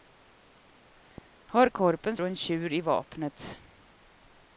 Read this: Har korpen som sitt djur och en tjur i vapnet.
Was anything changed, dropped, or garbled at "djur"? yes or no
yes